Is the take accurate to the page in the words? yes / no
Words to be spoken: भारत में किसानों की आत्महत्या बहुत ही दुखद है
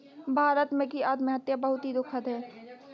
no